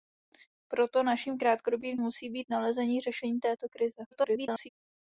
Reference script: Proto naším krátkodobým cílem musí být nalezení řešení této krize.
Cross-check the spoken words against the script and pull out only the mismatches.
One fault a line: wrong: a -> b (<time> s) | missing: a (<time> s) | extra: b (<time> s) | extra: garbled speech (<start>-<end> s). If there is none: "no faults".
missing: cílem (2.0 s)
extra: garbled speech (4.1-4.7 s)